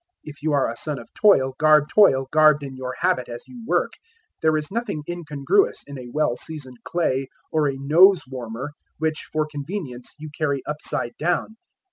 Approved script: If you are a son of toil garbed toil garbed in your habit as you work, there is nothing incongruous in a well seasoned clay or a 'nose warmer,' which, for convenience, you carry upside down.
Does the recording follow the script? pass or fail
pass